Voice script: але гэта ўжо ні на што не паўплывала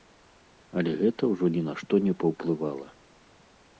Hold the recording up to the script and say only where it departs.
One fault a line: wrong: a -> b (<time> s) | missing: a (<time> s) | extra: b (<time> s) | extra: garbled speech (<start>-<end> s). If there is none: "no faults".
no faults